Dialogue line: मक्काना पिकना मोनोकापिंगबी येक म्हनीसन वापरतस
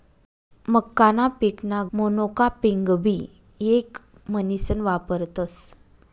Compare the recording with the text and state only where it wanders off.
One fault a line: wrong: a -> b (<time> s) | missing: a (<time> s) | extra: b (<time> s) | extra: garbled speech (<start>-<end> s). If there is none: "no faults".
no faults